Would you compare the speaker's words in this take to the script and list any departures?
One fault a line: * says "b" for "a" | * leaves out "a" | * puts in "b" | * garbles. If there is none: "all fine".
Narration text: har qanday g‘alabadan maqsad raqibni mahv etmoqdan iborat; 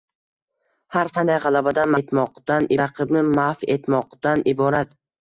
* says "etmoqdan" for "maqsad"